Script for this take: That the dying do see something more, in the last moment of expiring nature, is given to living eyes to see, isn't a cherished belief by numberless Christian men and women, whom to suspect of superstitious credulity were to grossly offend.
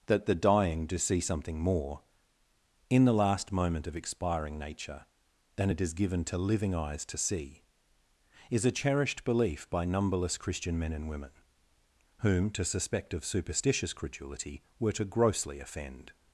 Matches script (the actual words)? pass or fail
fail